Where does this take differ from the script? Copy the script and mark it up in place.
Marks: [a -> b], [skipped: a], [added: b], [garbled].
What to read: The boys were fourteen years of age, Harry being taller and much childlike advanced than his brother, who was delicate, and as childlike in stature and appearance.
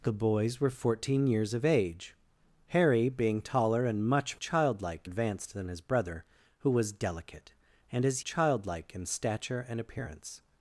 The boys were fourteen years of age, Harry being taller and much childlike advanced than his brother, who was delicate, and as childlike in stature and appearance.